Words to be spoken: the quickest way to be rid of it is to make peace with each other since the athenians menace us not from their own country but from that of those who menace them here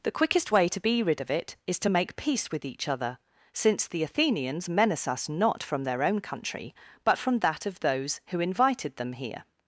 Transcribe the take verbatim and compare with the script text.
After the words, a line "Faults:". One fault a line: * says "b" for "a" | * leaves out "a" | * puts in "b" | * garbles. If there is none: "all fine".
the quickest way to be rid of it is to make peace with each other since the athenians menace us not from their own country but from that of those who invited them here
Faults:
* says "invited" for "menace"